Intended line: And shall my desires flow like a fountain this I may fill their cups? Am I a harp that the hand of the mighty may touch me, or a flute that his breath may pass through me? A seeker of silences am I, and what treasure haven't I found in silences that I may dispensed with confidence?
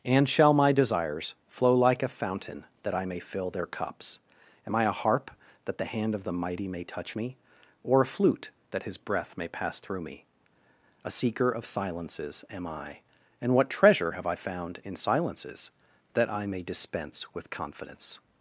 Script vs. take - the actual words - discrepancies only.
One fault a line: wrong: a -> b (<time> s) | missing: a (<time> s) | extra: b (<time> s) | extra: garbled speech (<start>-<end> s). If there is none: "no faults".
wrong: this -> that (2.8 s)
wrong: haven't -> have (14.1 s)
wrong: dispensed -> dispense (16.6 s)